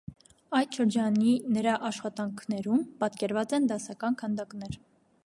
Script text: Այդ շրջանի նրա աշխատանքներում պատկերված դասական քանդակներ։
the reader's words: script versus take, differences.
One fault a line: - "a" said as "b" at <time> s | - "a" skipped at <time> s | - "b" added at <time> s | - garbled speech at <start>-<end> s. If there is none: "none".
- "են" added at 3.6 s